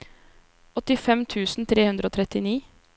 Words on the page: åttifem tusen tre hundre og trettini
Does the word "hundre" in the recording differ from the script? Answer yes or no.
no